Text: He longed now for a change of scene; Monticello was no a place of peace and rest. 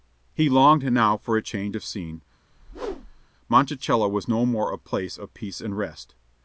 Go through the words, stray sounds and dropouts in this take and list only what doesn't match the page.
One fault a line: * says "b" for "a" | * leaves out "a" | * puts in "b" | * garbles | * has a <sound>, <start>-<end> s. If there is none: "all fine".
* has a whoosh, 2.5-3.3 s
* puts in "more"